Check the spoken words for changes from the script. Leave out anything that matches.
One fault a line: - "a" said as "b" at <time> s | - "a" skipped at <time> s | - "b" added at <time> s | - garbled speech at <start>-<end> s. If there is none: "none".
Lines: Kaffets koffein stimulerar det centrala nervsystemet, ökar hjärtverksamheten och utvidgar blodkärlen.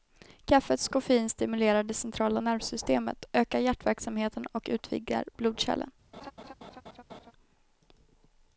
none